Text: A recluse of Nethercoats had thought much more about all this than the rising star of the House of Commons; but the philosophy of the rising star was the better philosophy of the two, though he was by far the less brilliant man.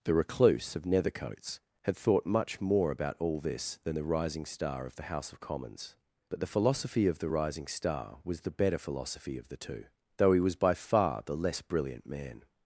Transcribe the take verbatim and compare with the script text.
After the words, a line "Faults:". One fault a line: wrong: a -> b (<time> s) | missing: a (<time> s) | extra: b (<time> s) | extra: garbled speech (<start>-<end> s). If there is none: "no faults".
The recluse of Nethercoats had thought much more about all this than the rising star of the House of Commons; but the philosophy of the rising star was the better philosophy of the two, though he was by far the less brilliant man.
Faults:
wrong: A -> The (0.0 s)